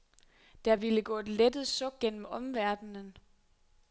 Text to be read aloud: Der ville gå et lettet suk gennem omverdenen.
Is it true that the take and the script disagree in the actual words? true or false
false